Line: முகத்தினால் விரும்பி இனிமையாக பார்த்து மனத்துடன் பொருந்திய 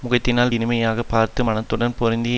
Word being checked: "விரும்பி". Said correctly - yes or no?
no